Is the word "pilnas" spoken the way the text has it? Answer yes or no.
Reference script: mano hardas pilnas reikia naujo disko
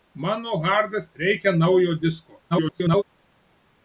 no